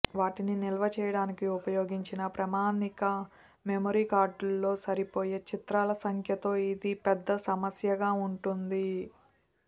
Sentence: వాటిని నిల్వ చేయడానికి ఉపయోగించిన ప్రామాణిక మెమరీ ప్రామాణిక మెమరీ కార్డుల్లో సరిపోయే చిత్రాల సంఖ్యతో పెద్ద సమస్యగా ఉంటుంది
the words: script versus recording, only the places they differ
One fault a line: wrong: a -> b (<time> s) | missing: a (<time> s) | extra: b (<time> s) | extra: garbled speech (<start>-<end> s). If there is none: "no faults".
missing: ప్రామాణిక మెమరీ (4.0 s)
extra: ఇది (6.7 s)